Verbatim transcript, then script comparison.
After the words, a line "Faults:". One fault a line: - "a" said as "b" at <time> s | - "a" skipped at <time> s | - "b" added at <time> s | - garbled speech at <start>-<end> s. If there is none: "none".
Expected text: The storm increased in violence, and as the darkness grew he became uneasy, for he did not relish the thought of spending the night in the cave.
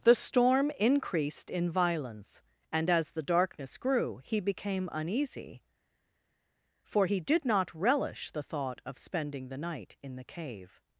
The storm increased in violence, and as the darkness grew he became uneasy, for he did not relish the thought of spending the night in the cave.
Faults:
none